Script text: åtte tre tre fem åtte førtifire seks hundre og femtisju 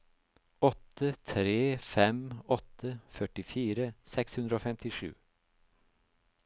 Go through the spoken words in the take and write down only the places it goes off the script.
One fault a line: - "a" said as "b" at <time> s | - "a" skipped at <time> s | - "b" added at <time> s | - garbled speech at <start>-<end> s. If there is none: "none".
- "tre" skipped at 1.6 s